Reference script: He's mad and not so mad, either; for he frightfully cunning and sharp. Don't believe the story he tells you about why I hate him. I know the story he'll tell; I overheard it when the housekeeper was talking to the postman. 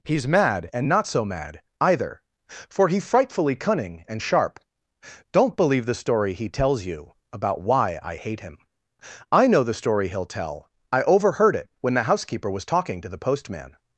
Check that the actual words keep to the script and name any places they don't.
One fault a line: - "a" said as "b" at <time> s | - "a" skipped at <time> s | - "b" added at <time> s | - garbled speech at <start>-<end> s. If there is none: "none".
none